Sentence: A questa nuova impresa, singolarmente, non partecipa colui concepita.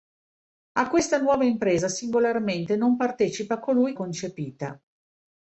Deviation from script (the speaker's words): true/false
false